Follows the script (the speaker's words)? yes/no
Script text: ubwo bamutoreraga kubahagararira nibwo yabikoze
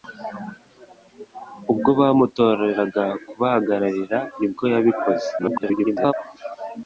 no